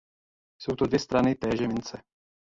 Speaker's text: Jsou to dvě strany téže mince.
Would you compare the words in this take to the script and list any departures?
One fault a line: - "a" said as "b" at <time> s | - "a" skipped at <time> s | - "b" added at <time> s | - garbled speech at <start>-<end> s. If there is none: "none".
none